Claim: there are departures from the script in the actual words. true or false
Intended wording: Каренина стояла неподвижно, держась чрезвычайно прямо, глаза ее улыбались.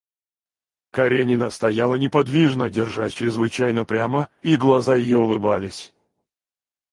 true